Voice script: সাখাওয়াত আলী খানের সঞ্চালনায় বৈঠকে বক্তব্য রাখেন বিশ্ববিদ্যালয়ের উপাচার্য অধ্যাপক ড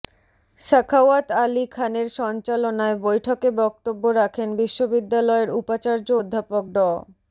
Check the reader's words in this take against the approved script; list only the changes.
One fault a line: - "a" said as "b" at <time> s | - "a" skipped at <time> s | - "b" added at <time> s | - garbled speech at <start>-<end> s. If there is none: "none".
none